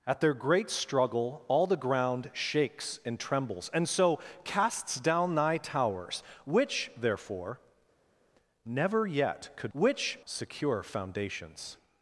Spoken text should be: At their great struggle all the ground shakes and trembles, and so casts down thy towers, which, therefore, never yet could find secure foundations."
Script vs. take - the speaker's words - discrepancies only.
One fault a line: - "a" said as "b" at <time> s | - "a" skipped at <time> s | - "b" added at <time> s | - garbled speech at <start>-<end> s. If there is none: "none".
- "find" said as "which" at 9.7 s